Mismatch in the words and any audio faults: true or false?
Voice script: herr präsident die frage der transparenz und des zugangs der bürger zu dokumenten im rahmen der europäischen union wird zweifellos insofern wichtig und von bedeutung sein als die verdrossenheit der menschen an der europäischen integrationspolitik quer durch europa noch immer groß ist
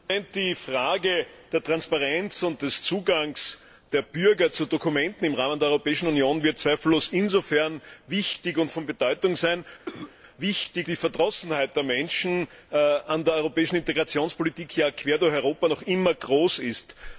true